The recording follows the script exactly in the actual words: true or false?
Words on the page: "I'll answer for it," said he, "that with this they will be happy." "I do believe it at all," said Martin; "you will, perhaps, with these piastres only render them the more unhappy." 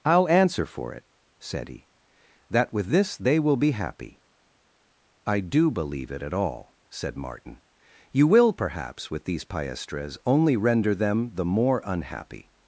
true